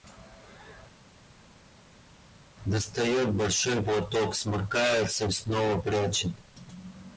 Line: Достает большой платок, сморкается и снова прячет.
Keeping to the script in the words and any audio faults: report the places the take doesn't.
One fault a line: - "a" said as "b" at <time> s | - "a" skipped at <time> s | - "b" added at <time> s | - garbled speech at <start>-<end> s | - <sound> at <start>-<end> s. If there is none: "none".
none